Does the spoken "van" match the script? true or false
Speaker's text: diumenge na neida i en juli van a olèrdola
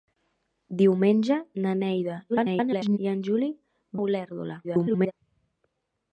false